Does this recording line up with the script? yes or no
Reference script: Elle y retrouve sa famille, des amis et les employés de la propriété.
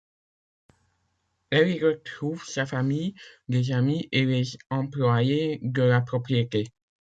yes